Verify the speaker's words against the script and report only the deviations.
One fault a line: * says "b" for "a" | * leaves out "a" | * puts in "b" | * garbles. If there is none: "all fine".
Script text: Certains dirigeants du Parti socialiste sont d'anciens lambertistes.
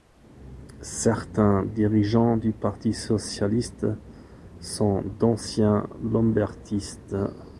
all fine